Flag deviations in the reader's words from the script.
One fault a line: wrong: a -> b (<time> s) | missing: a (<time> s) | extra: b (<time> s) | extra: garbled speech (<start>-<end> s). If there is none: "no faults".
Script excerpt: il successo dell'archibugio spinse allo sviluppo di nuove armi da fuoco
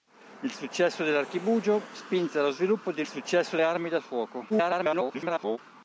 wrong: nuove -> successo (3.0 s)
extra: garbled speech (4.5-5.6 s)